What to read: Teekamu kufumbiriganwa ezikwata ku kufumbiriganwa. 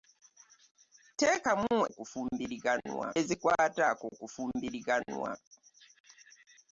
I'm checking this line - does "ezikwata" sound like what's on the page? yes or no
yes